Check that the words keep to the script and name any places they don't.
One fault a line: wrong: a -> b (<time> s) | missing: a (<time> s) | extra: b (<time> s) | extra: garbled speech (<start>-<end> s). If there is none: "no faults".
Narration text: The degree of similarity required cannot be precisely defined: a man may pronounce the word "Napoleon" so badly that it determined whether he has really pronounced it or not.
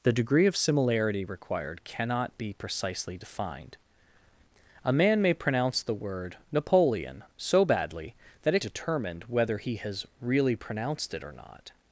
no faults